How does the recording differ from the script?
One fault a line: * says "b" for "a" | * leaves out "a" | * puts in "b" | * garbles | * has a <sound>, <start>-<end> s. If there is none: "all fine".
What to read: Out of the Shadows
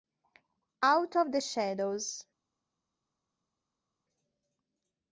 all fine